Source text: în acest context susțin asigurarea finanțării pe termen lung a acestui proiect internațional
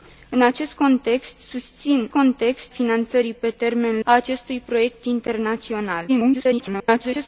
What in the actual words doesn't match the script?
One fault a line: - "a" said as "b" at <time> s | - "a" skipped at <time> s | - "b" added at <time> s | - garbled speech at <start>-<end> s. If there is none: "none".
- "asigurarea" said as "context" at 2.1 s
- "lung" skipped at 4.0 s
- garbled speech at 6.1-7.3 s